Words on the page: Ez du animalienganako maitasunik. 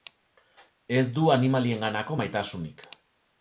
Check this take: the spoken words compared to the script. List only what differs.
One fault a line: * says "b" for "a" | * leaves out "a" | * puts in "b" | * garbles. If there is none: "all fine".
all fine